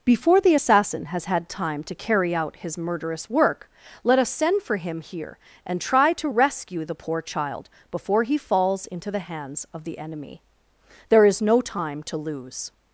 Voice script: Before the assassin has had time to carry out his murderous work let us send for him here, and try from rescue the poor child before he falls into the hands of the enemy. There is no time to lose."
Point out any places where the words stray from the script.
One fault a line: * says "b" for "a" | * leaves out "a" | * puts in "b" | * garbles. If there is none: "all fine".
* says "to" for "from"